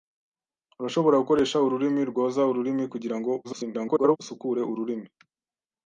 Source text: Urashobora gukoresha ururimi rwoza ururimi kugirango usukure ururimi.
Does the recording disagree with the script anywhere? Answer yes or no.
yes